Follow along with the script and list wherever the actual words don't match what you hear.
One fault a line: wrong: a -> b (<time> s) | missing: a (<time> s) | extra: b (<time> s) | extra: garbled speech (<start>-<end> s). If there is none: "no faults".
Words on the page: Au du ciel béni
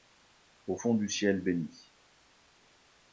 extra: fond (0.7 s)